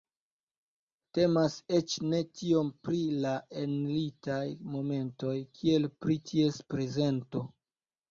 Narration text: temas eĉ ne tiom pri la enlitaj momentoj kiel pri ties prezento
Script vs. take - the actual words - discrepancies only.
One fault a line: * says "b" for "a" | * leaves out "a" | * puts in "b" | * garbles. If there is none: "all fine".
all fine